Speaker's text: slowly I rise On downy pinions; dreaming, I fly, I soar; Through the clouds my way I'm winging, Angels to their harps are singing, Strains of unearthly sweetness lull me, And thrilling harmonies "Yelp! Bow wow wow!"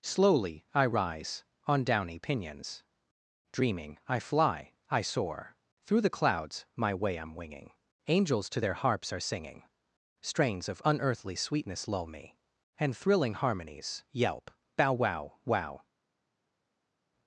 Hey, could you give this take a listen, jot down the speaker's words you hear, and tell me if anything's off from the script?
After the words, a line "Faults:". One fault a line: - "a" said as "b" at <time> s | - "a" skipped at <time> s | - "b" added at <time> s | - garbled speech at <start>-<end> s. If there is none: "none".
slowly I rise On downy pinions; dreaming, I fly, I soar; Through the clouds my way I'm winging, Angels to their harps are singing, Strains of unearthly sweetness lull me, And thrilling harmonies "Yelp! Bow wow wow!"
Faults:
none